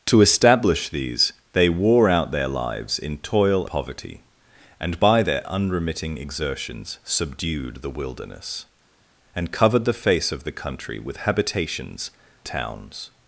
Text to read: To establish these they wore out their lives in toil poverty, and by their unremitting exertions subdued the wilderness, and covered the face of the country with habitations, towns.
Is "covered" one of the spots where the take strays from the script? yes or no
no